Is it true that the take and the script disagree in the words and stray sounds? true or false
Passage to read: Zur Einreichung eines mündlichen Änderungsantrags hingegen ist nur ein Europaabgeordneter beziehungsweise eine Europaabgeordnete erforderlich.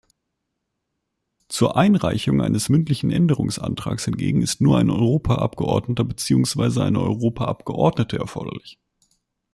false